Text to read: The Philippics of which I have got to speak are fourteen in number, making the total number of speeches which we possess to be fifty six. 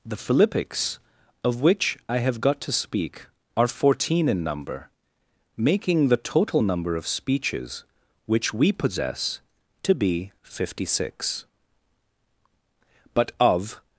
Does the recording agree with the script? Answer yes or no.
no